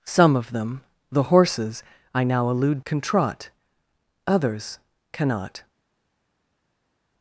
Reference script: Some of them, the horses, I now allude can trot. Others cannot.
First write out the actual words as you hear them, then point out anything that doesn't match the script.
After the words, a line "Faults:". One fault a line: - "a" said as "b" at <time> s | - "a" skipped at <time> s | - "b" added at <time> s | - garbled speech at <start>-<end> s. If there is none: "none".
Some of them, the horses, I now allude can trot. Others cannot.
Faults:
none